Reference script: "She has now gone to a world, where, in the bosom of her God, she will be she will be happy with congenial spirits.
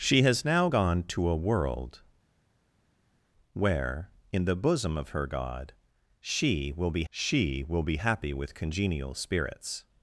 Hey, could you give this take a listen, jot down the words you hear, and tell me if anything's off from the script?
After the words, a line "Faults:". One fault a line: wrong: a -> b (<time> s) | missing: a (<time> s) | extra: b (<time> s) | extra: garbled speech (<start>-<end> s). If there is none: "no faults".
"She has now gone to a world, where, in the bosom of her God, she will be she will be happy with congenial spirits.
Faults:
no faults